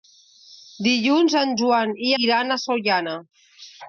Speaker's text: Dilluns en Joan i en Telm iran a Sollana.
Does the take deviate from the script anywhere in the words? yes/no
yes